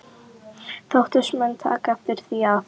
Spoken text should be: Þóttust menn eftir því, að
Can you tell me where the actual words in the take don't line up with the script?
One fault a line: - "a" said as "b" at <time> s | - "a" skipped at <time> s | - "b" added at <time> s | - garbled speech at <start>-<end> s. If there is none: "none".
- "taka" added at 1.7 s